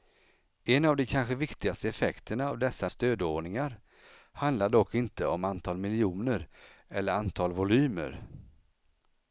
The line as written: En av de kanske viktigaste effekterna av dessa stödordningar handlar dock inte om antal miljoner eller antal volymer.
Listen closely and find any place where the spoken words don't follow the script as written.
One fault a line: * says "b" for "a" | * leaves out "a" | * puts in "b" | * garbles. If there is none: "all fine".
all fine